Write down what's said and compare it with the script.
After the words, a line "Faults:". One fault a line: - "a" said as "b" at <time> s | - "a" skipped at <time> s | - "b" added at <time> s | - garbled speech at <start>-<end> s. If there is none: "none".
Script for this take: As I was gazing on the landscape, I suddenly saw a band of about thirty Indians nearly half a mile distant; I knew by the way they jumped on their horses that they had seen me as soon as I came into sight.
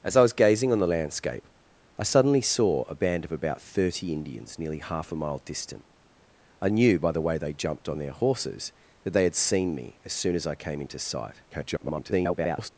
As I was gazing on the landscape, I suddenly saw a band of about thirty Indians nearly half a mile distant; I knew by the way they jumped on their horses that they had seen me as soon as I came into sight. [garbled]
Faults:
- garbled speech at 11.5-12.7 s